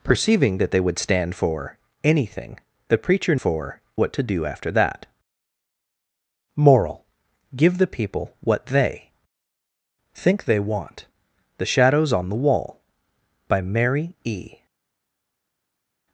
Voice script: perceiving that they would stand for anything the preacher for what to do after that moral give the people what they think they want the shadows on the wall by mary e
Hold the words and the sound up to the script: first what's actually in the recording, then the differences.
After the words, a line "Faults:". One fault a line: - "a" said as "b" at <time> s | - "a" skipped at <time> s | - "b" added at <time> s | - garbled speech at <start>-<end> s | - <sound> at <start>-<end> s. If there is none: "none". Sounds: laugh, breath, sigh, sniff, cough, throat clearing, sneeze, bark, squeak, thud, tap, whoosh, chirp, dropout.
perceiving that they would stand for anything the preacher for what to do after that moral give the people what they think they want the shadows on the wall by mary e
Faults:
none